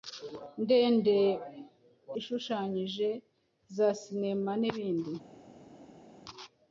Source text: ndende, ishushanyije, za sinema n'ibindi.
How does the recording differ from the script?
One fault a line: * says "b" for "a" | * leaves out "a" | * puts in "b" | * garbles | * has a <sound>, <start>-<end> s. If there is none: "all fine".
all fine